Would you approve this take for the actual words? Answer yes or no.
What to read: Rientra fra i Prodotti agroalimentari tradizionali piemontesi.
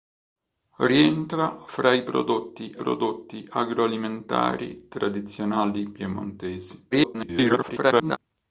no